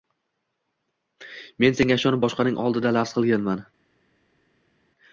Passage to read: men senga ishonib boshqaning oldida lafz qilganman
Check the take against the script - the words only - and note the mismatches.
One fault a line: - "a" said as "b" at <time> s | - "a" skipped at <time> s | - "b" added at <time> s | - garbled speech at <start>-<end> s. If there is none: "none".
none